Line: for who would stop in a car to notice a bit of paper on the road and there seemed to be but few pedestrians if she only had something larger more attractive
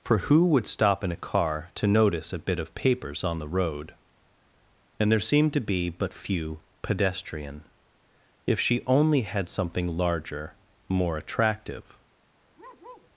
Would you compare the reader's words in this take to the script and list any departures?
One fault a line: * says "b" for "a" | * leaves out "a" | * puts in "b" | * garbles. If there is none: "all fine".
* says "papers" for "paper"
* says "pedestrian" for "pedestrians"